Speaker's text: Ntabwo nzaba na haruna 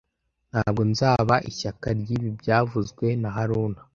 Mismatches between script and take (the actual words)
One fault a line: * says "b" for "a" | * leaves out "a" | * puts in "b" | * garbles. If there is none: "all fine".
* puts in "ishyaka ryibi byavuzwe"